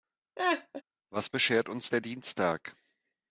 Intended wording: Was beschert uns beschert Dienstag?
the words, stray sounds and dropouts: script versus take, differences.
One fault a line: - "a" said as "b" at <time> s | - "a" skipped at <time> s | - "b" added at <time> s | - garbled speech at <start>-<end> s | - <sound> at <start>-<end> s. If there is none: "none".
- laugh at 0.4-0.8 s
- "beschert" said as "der" at 1.9 s